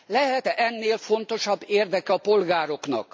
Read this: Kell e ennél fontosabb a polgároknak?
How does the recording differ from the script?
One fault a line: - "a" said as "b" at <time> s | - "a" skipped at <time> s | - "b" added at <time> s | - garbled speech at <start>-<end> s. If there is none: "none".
- "Kell" said as "Lehet" at 0.1 s
- "érdeke" added at 1.7 s